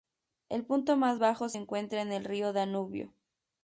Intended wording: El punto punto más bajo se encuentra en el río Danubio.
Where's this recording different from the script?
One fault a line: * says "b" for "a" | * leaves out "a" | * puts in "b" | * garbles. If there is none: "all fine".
* leaves out "punto"